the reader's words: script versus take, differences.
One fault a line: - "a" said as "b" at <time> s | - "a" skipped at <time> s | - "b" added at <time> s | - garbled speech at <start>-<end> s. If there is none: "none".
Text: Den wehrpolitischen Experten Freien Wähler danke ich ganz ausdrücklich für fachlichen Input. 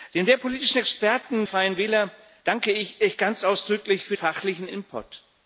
none